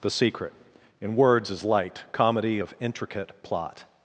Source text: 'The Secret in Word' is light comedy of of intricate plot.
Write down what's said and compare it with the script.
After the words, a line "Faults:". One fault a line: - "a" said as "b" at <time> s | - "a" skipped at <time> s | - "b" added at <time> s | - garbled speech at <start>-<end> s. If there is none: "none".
'The Secret in Words' is light comedy of intricate plot.
Faults:
- "Word" said as "Words" at 1.1 s
- "of" skipped at 2.7 s